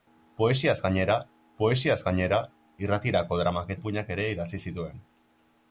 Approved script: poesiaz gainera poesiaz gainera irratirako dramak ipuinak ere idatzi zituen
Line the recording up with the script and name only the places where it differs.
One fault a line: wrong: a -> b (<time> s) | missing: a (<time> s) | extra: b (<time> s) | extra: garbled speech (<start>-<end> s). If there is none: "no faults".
no faults